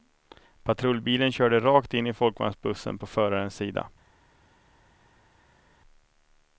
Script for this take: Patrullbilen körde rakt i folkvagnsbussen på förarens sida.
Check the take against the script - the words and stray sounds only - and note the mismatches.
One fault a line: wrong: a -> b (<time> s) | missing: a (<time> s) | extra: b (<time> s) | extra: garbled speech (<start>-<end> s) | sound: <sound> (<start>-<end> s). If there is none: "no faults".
extra: in (1.9 s)